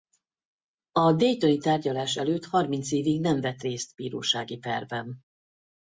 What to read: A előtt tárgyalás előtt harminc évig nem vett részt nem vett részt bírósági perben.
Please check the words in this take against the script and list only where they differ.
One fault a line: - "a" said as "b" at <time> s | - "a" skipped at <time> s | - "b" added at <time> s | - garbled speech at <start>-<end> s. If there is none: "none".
- "előtt" said as "daytoni" at 1.1 s
- "nem vett részt" skipped at 3.9 s